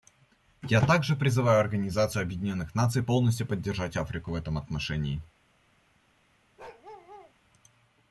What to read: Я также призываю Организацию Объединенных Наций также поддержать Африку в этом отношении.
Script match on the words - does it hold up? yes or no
no